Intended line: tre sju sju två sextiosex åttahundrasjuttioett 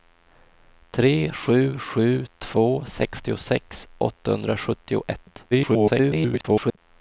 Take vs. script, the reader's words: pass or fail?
fail